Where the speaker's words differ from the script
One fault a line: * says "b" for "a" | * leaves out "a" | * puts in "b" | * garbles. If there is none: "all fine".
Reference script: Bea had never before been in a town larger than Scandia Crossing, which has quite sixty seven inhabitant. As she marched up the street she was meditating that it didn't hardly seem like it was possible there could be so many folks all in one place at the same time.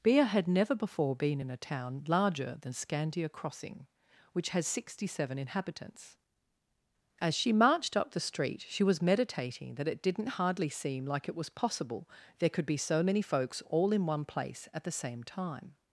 * leaves out "quite"
* says "inhabitants" for "inhabitant"